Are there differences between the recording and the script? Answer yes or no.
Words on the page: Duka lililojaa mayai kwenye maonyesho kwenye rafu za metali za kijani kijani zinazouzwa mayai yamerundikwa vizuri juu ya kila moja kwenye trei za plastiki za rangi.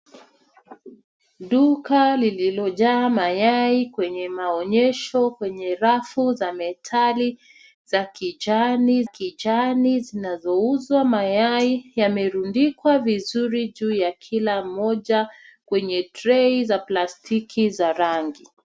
no